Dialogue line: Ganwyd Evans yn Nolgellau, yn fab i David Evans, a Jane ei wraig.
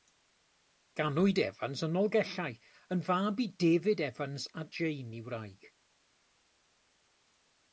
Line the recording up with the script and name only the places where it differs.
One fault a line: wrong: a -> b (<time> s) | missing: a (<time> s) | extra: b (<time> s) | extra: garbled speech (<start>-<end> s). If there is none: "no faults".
no faults